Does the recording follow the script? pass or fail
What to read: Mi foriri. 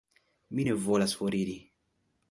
fail